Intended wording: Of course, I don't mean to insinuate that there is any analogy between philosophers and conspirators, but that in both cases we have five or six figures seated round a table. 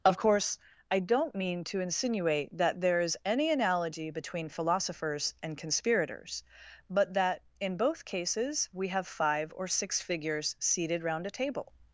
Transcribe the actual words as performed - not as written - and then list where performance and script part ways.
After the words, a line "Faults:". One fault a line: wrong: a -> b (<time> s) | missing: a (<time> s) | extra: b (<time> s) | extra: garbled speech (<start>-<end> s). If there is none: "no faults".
Of course, I don't mean to insinuate that there is any analogy between philosophers and conspirators, but that in both cases we have five or six figures seated round a table.
Faults:
no faults